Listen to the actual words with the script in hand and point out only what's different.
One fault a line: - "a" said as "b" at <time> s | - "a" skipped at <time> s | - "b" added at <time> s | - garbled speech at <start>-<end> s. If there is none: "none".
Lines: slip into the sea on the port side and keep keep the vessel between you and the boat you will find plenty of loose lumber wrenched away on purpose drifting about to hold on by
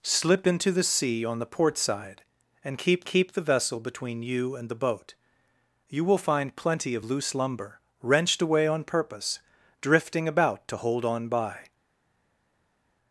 none